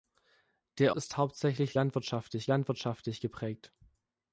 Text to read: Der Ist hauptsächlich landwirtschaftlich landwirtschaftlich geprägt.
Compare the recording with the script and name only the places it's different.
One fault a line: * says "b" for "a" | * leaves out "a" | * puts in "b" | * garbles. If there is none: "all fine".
all fine